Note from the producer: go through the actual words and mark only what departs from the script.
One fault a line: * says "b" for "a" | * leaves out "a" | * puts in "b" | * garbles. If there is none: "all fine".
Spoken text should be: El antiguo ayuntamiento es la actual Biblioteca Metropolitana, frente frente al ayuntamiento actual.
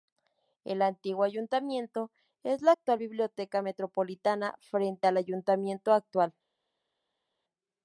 * leaves out "frente"